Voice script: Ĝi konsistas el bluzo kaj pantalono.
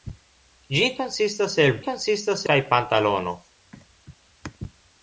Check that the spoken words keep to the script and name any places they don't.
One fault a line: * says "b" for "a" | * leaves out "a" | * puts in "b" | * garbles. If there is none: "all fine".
* says "konsistas" for "bluzo"